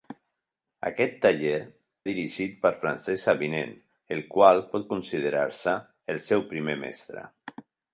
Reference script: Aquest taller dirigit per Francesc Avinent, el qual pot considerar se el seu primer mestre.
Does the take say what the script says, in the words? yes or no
yes